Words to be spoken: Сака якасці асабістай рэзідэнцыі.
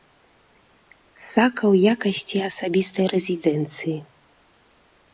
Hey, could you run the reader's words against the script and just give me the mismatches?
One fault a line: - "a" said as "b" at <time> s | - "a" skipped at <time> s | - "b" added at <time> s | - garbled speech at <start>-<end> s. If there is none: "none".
- "ў" added at 1.7 s